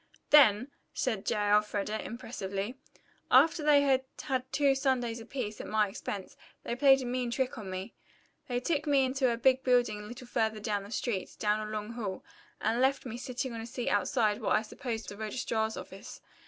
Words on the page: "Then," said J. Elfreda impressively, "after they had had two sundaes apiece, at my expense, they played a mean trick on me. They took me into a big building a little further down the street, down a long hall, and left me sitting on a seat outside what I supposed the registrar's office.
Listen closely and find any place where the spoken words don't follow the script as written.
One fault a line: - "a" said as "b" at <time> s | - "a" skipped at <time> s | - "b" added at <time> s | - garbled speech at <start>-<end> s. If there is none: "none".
none